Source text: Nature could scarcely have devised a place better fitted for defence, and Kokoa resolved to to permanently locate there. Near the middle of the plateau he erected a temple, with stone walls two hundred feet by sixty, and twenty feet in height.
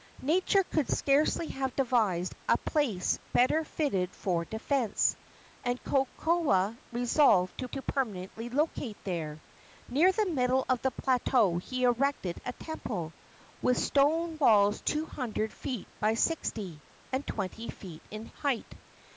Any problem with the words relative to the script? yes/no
no